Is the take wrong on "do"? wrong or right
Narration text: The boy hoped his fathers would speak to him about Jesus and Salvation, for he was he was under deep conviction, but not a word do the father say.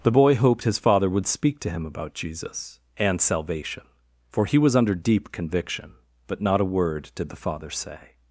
wrong